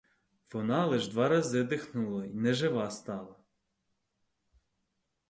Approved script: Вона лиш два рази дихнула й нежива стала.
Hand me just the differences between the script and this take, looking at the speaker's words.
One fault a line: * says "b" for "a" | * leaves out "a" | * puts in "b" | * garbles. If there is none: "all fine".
all fine